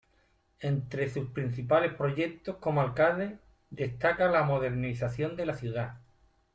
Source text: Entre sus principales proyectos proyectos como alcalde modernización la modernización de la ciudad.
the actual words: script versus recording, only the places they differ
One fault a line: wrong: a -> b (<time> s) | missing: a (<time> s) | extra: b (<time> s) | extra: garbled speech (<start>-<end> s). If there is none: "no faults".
missing: proyectos (2.6 s)
wrong: modernización -> destaca (3.7 s)